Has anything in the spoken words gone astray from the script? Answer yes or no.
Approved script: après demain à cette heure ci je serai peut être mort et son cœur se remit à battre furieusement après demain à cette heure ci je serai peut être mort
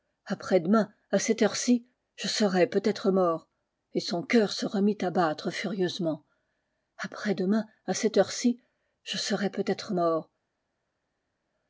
no